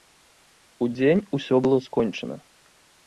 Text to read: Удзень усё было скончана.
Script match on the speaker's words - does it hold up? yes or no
yes